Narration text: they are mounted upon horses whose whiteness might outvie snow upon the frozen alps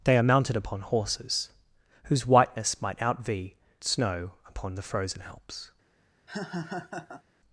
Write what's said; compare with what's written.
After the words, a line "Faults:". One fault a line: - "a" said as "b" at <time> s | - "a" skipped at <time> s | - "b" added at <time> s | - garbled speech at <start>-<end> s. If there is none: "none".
they are mounted upon horses whose whiteness might outvie snow upon the frozen alps
Faults:
none